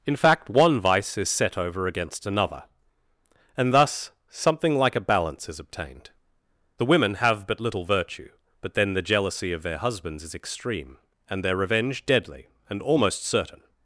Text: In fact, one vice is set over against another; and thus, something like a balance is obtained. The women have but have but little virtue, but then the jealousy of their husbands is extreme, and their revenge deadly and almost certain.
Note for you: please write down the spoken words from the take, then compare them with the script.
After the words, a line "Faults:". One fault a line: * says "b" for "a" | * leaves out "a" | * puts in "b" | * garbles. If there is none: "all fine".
In fact, one vice is set over against another; and thus, something like a balance is obtained. The women have but little virtue, but then the jealousy of their husbands is extreme, and their revenge deadly and almost certain.
Faults:
* leaves out "have but"